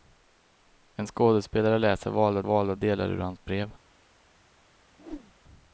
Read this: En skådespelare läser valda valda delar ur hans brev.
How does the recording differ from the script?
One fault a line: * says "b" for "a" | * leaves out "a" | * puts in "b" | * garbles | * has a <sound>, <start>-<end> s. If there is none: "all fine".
* has a whoosh, 5.0-5.3 s